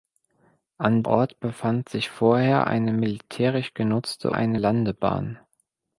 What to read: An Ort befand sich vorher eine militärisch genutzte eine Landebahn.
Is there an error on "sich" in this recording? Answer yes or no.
no